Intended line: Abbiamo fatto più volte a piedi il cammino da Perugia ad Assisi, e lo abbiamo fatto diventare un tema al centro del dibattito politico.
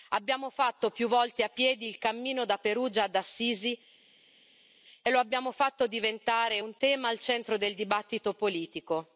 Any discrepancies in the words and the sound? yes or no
no